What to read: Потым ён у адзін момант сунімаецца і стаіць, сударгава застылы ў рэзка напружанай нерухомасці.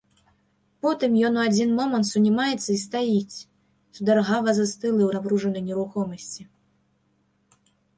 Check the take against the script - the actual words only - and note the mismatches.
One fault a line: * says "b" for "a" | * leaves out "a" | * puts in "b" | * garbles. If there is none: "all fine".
* leaves out "рэзка"